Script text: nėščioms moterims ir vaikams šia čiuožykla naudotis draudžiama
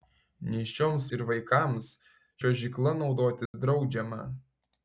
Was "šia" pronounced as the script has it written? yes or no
no